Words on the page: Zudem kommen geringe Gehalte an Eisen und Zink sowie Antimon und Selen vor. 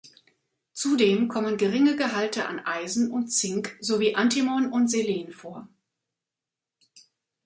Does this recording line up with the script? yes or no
yes